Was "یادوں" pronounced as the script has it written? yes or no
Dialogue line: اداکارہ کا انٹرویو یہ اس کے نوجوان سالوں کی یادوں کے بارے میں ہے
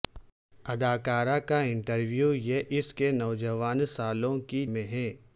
no